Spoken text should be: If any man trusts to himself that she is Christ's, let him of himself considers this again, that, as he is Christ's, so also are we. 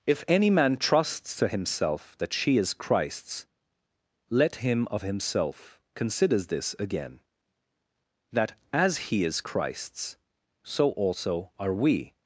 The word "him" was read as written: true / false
true